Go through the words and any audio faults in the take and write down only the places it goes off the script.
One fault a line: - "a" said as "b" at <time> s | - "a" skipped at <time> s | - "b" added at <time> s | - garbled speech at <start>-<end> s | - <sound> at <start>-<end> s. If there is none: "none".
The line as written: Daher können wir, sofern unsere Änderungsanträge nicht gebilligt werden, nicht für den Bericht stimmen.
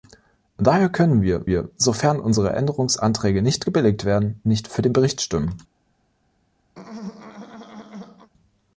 - "wir" added at 1.4 s
- throat clearing at 6.7-8.3 s